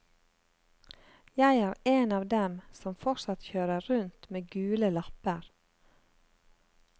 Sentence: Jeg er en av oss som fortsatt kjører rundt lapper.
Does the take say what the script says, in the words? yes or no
no